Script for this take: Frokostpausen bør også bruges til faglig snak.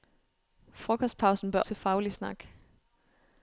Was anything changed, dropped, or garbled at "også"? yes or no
yes